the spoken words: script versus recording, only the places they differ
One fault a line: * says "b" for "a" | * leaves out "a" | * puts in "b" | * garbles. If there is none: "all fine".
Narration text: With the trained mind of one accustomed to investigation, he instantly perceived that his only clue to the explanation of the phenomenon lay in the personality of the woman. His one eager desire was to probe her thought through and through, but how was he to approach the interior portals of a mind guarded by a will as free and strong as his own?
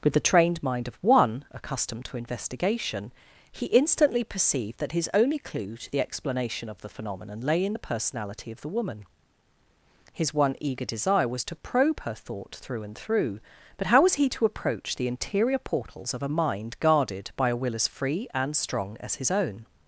all fine